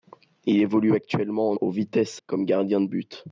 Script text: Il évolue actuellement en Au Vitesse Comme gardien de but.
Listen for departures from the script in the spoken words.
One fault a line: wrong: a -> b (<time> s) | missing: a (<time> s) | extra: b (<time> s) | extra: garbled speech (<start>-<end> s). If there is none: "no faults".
no faults